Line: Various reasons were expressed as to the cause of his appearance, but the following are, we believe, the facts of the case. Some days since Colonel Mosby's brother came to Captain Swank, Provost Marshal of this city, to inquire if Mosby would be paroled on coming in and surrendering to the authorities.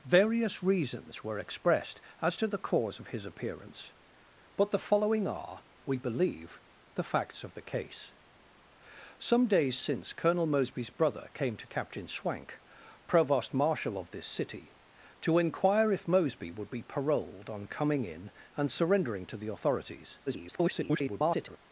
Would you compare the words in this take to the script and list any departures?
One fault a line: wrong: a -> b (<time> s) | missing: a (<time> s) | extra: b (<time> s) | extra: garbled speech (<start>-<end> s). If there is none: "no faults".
extra: garbled speech (20.3-21.6 s)